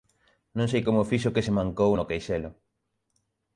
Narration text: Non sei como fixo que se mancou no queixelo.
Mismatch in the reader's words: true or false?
false